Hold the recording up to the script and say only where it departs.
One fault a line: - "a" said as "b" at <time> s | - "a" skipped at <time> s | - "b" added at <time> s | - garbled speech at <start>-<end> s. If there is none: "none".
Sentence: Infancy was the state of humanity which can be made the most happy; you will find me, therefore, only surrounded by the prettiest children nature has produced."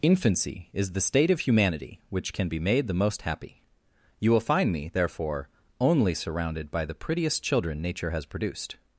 - "was" said as "is" at 0.7 s